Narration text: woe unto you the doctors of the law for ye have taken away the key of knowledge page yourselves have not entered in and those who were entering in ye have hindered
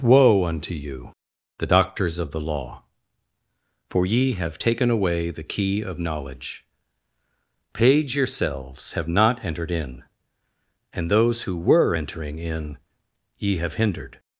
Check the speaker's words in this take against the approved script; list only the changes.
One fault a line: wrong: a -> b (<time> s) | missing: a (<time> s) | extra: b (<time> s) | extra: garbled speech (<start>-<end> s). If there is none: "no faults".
no faults